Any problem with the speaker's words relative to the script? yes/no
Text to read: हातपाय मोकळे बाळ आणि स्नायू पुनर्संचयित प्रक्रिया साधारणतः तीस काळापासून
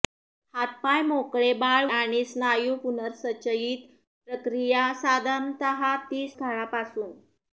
no